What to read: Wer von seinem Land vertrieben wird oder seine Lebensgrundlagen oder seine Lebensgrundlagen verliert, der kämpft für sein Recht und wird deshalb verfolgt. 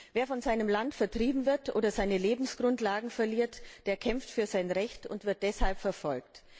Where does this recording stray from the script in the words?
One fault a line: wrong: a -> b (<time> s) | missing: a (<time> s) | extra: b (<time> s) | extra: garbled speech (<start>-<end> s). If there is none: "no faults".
missing: oder seine Lebensgrundlagen (3.1 s)